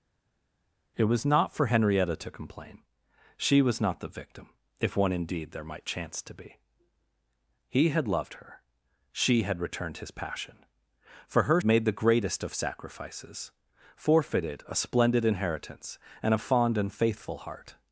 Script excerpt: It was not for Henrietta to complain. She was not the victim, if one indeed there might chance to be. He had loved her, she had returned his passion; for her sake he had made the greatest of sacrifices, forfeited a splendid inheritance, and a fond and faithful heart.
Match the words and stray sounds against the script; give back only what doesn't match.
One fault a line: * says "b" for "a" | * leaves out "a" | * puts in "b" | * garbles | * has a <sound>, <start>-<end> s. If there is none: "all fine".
* leaves out "sake he had"